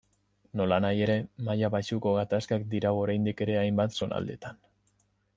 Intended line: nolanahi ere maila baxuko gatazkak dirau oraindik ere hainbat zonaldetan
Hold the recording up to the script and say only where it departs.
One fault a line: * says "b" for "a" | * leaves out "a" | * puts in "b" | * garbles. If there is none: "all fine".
all fine